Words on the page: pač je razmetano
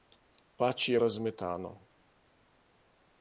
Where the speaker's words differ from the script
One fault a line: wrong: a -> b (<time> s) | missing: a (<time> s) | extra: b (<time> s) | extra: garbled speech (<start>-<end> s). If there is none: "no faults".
no faults